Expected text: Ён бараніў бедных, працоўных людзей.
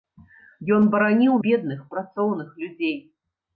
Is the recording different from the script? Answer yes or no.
no